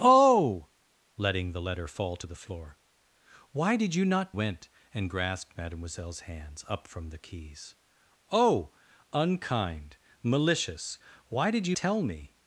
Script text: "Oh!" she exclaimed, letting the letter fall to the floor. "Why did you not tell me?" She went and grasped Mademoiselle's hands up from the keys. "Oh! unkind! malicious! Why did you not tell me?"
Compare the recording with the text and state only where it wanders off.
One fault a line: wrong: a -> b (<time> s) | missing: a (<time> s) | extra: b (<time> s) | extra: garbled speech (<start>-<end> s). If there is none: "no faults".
missing: she exclaimed (0.7 s)
missing: tell me She (4.3 s)
missing: not (11.7 s)